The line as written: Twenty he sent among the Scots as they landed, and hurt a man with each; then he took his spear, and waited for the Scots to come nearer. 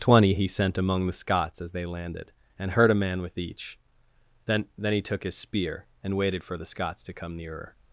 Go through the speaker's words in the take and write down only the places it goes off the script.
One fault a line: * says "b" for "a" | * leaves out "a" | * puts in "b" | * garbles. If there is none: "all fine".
* puts in "then"